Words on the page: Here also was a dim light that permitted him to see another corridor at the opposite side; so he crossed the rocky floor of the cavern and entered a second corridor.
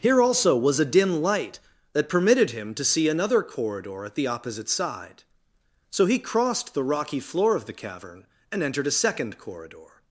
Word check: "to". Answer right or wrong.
right